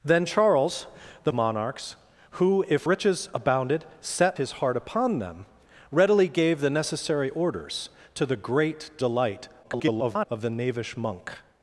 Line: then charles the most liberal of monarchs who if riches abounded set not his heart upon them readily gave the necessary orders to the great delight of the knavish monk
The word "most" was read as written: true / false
false